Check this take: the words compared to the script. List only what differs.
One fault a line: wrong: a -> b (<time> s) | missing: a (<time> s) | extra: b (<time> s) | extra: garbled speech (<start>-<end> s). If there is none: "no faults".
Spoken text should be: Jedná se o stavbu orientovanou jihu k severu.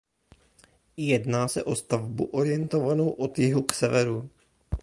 extra: od (3.1 s)